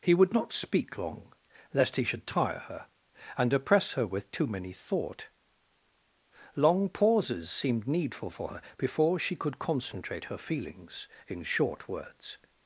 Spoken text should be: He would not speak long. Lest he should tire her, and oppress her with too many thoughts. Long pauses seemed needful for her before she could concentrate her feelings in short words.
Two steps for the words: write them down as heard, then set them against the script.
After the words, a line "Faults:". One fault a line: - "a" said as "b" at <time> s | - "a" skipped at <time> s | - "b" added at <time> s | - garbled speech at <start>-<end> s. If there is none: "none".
He would not speak long. Lest he should tire her, and oppress her with too many thought. Long pauses seemed needful for her before she could concentrate her feelings in short words.
Faults:
- "thoughts" said as "thought" at 4.7 s